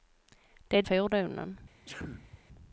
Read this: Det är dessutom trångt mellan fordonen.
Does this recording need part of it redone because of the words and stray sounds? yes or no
yes